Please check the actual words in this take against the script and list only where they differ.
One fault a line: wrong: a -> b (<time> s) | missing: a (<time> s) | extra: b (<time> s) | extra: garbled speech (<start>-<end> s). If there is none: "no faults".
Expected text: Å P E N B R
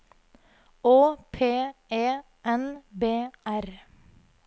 no faults